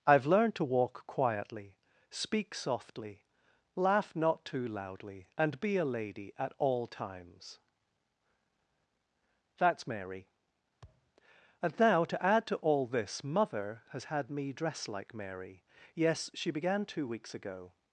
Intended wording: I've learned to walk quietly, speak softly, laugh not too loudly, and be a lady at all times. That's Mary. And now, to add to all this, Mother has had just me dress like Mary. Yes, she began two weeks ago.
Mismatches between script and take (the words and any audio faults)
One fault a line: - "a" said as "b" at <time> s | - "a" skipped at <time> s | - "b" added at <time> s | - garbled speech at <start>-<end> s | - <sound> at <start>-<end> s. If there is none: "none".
- thud at 10.8-11.1 s
- "just" skipped at 14.3 s